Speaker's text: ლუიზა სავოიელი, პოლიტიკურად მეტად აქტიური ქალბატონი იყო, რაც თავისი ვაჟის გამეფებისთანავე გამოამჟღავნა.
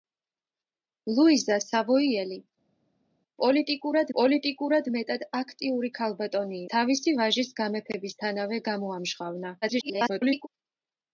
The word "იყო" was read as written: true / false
false